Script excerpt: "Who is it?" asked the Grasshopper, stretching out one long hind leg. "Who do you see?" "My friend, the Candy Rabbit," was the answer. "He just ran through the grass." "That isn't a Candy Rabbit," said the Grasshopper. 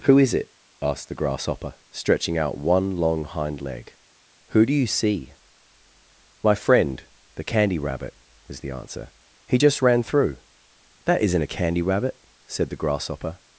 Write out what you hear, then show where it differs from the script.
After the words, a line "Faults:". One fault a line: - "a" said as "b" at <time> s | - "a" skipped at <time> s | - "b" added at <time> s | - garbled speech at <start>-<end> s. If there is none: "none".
"Who is it?" asked the Grasshopper, stretching out one long hind leg. "Who do you see?" "My friend, the Candy Rabbit," was the answer. "He just ran through." "That isn't a Candy Rabbit," said the Grasshopper.
Faults:
- "the grass" skipped at 10.4 s